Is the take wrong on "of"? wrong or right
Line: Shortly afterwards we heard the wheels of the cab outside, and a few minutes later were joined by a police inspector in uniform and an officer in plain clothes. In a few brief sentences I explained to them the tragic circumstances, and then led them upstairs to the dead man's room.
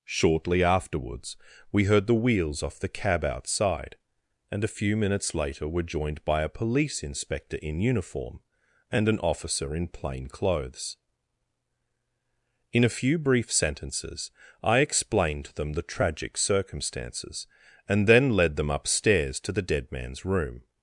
wrong